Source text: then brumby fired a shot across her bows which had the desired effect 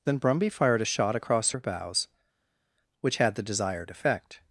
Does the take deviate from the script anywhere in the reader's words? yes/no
no